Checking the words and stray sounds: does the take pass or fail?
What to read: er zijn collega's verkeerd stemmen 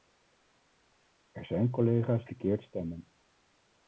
pass